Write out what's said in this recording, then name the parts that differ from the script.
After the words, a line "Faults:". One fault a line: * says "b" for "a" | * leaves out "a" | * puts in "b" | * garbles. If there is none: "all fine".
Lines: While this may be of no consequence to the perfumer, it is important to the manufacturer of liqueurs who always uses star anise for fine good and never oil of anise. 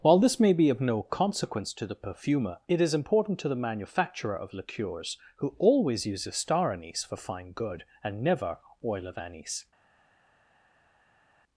While this may be of no consequence to the perfumer, it is important to the manufacturer of liqueurs who always uses star anise for fine good and never oil of anise.
Faults:
all fine